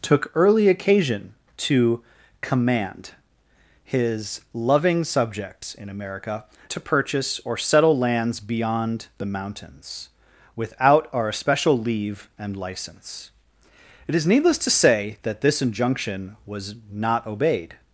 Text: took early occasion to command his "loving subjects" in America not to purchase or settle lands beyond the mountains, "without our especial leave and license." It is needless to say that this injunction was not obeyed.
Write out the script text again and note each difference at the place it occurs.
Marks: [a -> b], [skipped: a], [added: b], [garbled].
took early occasion to command his "loving subjects" in America [skipped: not] to purchase or settle lands beyond the mountains, "without our especial leave and license." It is needless to say that this injunction was not obeyed.